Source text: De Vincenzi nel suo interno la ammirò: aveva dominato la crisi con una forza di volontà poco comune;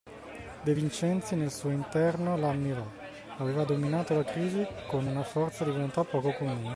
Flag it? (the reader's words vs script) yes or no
no